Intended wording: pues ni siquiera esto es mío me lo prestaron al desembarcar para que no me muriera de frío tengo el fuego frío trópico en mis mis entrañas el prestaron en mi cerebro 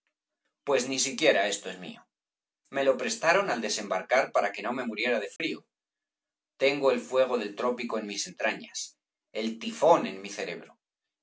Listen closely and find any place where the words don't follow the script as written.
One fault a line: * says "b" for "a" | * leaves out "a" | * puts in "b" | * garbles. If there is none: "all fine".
* says "del" for "frío"
* leaves out "mis"
* says "tifón" for "prestaron"